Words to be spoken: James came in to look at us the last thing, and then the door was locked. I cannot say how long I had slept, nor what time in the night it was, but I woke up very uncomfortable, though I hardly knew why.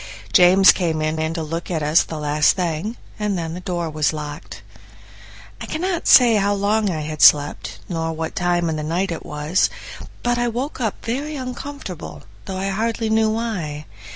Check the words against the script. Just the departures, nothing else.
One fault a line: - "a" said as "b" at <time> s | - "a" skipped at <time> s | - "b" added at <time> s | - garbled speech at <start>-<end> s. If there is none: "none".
- "in" added at 1.2 s